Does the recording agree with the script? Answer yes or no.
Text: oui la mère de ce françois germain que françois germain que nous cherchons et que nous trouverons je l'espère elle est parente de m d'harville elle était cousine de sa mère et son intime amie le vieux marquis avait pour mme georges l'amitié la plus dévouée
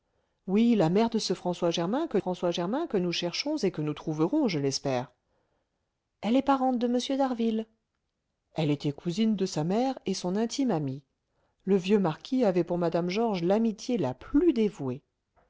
yes